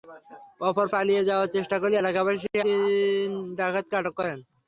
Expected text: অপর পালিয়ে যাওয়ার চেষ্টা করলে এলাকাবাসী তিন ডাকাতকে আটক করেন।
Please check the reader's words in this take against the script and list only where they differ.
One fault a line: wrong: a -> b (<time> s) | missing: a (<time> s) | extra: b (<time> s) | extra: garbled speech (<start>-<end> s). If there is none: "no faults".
no faults